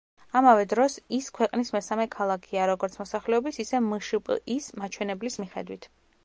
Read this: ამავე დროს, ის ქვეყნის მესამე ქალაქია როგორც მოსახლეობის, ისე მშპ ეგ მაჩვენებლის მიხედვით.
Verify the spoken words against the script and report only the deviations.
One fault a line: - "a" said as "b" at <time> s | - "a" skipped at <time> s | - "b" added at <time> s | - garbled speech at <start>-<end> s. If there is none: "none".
- "ეგ" said as "ის" at 4.6 s